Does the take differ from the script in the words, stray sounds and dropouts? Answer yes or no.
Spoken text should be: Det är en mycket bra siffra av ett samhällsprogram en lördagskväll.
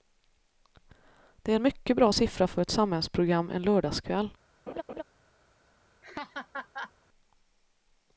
yes